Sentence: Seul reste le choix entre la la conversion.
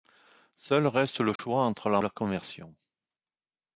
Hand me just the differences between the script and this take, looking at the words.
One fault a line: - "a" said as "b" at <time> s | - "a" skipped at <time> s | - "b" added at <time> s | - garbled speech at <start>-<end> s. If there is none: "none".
none